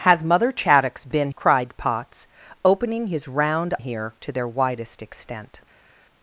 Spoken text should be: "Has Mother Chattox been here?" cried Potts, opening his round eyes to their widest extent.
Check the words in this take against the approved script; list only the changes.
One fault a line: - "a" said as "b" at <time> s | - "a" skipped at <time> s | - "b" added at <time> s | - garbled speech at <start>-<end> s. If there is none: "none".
- "here" skipped at 1.3 s
- "eyes" said as "here" at 3.8 s